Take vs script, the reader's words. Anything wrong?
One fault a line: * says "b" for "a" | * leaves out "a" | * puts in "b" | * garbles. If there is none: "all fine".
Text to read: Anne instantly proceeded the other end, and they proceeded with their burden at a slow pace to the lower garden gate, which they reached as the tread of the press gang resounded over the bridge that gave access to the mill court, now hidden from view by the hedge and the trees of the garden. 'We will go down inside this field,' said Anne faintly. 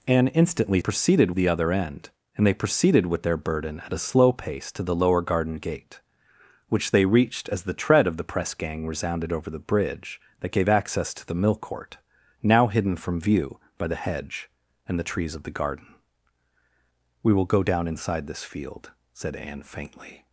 all fine